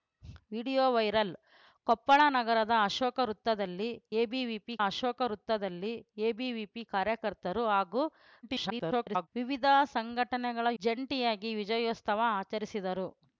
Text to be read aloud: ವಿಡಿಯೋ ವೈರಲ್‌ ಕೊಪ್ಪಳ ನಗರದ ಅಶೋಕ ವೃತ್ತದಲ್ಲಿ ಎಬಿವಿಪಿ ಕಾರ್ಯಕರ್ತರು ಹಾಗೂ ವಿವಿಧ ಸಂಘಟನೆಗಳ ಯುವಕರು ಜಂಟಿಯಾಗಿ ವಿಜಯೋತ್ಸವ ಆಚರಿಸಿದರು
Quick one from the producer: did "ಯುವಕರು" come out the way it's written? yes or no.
no